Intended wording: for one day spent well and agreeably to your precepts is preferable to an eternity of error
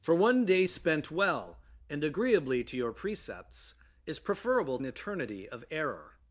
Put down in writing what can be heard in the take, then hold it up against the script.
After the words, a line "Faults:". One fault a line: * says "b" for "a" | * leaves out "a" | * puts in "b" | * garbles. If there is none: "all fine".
for one day spent well and agreeably to your precepts is preferable an eternity of error
Faults:
* leaves out "to"